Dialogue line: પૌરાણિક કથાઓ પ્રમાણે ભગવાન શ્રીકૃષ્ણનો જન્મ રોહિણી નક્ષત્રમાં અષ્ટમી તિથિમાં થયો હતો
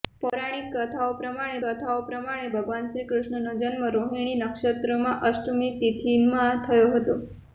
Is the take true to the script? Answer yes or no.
no